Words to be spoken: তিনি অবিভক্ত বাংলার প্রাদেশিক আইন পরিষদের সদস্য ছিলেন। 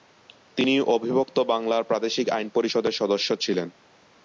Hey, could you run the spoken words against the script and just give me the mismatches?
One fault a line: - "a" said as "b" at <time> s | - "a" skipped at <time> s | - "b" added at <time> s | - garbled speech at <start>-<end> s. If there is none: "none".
none